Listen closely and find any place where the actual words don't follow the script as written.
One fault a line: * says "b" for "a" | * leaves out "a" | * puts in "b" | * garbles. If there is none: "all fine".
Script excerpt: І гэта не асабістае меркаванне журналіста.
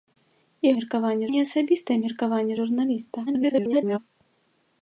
* says "меркаванне" for "гэта"
* garbles